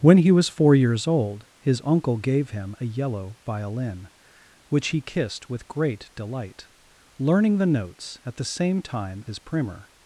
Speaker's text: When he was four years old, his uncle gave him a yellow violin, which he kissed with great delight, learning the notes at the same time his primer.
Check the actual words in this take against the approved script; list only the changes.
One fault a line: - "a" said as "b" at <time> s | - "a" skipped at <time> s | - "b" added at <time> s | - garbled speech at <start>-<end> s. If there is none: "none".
none